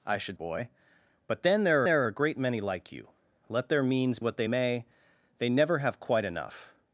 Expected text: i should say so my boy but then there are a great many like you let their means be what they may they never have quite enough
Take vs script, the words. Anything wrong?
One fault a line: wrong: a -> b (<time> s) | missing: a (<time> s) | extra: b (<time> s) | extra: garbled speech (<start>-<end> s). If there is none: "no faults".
missing: say so my (0.4 s)
extra: there (1.8 s)
missing: be (4.2 s)